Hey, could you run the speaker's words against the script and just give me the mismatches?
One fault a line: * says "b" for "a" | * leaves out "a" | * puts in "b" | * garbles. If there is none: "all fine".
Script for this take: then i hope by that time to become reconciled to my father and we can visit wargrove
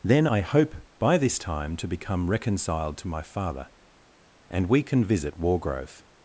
* says "this" for "that"